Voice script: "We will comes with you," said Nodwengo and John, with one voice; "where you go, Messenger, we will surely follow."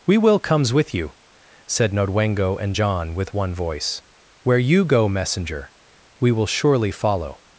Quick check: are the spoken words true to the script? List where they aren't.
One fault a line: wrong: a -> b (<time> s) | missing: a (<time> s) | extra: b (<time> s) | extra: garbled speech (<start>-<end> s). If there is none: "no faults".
no faults